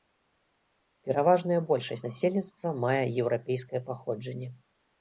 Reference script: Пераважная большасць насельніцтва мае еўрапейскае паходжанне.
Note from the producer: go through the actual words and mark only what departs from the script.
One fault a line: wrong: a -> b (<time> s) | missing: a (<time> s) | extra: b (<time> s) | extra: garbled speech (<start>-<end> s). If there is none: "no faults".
no faults